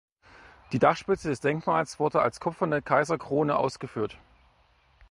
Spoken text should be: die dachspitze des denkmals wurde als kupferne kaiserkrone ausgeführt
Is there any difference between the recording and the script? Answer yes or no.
no